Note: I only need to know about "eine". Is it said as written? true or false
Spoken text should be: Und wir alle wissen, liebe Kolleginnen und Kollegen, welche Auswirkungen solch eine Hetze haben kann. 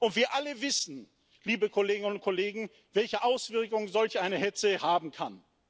true